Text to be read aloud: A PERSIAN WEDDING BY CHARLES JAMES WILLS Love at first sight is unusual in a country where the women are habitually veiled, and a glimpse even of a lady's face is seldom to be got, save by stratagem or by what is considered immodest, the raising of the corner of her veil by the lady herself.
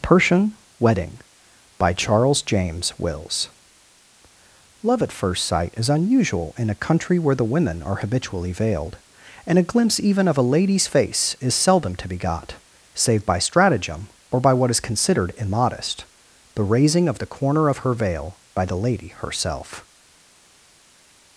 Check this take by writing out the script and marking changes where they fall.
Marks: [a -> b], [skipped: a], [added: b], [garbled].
[skipped: A] PERSIAN WEDDING BY CHARLES JAMES WILLS Love at first sight is unusual in a country where the women are habitually veiled, and a glimpse even of a lady's face is seldom to be got, save by stratagem or by what is considered immodest, the raising of the corner of her veil by the lady herself.